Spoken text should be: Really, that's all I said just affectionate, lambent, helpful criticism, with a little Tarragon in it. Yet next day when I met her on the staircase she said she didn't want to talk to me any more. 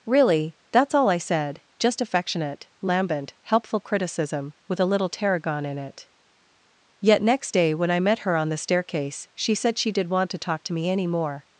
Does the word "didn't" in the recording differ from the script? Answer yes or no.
yes